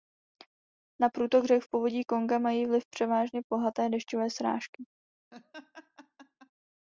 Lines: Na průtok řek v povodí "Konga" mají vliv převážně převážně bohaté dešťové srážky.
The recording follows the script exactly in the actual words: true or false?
false